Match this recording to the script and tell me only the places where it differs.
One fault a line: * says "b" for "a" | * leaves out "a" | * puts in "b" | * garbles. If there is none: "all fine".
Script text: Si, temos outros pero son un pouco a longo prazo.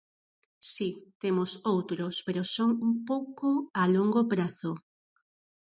all fine